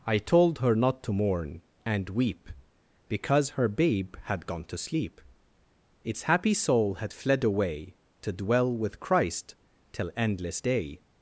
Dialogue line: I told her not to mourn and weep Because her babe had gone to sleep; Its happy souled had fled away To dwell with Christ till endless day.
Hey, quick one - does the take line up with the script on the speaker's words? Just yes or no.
no